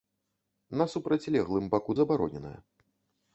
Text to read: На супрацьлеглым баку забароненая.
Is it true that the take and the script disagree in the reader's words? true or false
false